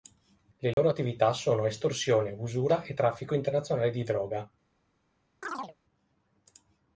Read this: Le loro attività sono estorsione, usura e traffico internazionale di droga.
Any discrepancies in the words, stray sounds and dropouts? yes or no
yes